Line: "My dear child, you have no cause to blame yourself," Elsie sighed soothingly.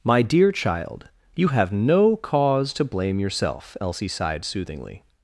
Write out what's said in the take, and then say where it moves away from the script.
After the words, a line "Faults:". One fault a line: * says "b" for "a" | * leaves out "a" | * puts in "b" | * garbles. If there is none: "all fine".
"My dear child, you have no cause to blame yourself," Elsie sighed soothingly.
Faults:
all fine